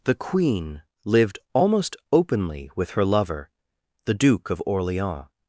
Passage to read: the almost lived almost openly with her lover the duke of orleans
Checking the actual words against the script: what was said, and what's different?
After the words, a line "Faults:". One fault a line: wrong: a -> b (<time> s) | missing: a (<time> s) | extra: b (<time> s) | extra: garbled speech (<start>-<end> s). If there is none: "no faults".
the queen lived almost openly with her lover the duke of orleans
Faults:
wrong: almost -> queen (0.1 s)